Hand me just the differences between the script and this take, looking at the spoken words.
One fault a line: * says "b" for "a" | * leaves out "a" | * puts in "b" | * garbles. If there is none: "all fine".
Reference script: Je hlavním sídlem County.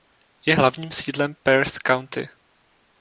* puts in "Perth"